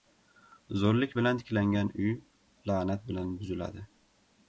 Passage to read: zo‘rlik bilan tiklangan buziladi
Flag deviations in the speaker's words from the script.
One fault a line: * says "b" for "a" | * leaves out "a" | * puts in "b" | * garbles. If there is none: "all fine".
* puts in "uy la'nat bilan"